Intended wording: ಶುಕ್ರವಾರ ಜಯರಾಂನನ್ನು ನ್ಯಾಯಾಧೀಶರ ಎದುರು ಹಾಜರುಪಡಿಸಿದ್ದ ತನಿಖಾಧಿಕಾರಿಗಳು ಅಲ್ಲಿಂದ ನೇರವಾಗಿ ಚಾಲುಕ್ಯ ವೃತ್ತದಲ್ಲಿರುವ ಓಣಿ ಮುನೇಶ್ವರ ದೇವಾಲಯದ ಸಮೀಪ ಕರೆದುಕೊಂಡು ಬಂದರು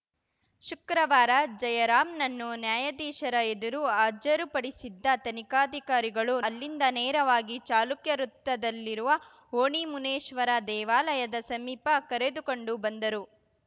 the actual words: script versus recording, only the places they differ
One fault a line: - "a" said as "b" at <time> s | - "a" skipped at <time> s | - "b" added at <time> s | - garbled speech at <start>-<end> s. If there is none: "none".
none